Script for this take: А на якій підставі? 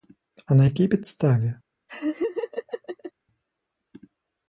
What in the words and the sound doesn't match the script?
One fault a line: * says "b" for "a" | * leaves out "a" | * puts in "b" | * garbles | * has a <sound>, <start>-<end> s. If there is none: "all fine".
* has a laugh, 1.9-3.1 s